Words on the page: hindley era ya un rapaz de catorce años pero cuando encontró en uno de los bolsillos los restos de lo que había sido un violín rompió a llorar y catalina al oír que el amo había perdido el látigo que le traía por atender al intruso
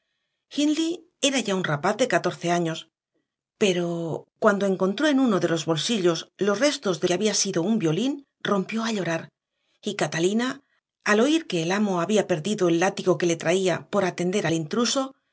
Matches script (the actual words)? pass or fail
fail